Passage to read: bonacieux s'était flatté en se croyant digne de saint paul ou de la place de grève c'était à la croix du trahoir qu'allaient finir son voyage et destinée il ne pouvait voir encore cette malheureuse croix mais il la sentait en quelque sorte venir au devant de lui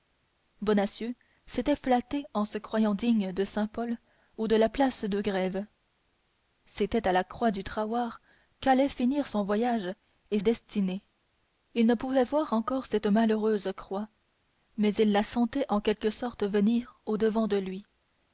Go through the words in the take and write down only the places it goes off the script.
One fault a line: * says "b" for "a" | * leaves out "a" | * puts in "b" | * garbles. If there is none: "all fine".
all fine